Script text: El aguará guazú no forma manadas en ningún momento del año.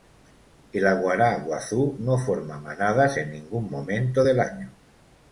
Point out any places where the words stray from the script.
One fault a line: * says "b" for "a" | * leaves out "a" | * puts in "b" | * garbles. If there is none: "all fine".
all fine